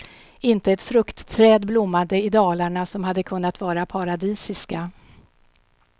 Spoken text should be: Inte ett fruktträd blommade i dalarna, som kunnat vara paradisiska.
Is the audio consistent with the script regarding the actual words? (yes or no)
no